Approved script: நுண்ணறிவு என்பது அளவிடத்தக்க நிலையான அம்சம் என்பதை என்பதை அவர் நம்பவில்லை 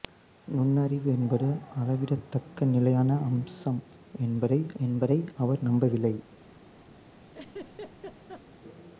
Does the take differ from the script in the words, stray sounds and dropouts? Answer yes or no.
yes